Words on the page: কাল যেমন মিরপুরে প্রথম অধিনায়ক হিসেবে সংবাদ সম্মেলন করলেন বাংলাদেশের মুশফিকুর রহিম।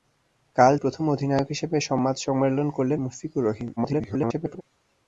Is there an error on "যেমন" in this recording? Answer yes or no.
yes